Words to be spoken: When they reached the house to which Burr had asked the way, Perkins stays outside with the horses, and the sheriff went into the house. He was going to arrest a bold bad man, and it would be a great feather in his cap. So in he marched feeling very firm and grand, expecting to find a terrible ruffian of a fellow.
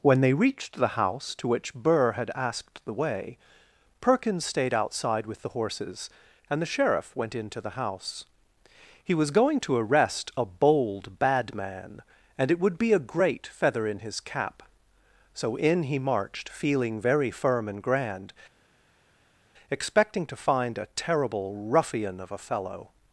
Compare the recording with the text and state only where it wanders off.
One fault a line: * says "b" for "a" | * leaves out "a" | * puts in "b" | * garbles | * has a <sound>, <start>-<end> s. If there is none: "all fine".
* says "stayed" for "stays"